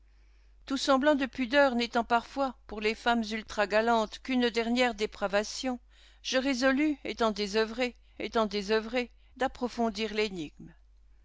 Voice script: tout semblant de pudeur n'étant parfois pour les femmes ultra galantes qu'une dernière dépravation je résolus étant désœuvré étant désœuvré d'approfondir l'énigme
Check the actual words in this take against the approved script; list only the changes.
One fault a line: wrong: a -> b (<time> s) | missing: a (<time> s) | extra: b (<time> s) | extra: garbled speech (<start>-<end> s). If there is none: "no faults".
no faults